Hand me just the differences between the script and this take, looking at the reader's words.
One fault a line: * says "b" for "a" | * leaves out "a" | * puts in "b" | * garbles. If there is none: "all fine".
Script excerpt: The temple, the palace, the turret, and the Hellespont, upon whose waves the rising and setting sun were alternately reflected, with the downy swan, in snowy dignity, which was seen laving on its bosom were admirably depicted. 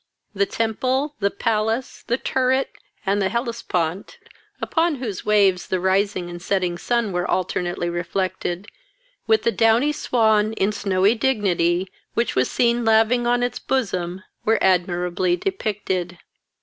all fine